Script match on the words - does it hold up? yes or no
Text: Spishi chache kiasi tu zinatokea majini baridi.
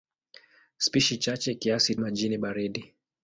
no